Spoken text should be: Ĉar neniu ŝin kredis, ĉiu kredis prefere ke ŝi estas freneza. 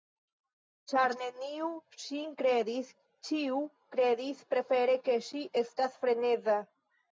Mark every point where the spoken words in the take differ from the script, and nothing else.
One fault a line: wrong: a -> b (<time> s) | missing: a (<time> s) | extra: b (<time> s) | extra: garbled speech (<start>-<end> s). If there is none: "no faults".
no faults